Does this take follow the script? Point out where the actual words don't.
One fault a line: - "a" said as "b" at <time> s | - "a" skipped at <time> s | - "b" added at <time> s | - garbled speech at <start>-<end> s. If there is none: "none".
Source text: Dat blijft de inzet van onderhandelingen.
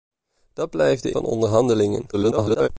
- "inzet" skipped at 1.1 s
- garbled speech at 2.1-2.7 s